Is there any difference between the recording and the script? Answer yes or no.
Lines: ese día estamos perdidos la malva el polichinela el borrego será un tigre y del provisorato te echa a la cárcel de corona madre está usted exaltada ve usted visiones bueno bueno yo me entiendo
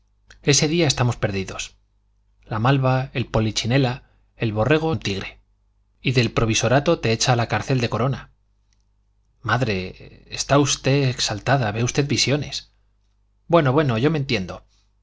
yes